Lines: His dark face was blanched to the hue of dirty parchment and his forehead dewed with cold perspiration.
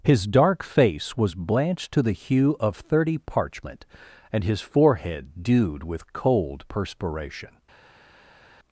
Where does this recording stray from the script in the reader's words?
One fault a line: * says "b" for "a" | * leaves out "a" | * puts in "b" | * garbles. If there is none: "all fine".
* says "thirty" for "dirty"